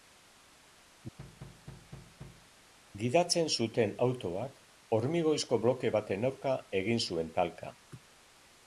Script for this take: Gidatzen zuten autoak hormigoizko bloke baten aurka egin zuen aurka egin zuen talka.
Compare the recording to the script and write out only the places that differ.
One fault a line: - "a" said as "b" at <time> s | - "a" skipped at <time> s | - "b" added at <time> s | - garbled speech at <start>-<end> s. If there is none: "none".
- "aurka egin zuen" skipped at 7.4 s